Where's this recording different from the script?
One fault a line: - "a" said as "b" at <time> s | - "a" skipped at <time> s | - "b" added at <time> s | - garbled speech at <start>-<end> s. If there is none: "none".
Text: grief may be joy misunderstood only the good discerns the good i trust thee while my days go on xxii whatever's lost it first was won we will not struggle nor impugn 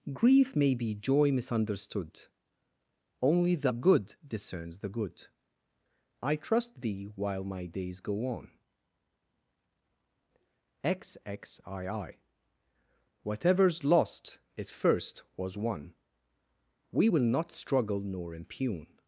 none